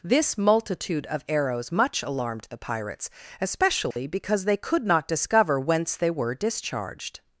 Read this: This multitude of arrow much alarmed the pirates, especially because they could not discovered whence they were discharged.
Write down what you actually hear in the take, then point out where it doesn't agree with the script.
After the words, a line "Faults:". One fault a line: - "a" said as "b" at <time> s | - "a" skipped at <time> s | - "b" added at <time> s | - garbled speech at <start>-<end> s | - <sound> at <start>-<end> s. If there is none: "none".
This multitude of arrows much alarmed the pirates, especially because they could not discover whence they were discharged.
Faults:
- "arrow" said as "arrows" at 1.3 s
- dropout at 3.9-4.0 s
- "discovered" said as "discover" at 5.1 s